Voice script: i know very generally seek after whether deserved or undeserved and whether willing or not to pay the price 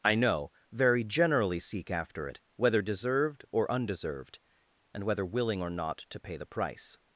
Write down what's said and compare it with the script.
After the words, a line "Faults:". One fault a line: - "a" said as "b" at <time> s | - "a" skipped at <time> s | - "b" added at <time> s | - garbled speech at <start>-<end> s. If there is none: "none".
i know very generally seek after it whether deserved or undeserved and whether willing or not to pay the price
Faults:
- "it" added at 2.2 s